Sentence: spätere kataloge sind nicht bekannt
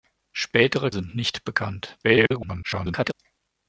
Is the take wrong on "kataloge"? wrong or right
wrong